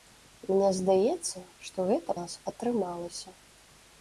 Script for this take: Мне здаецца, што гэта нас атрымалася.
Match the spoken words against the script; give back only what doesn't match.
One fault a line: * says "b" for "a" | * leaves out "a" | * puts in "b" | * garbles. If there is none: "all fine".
all fine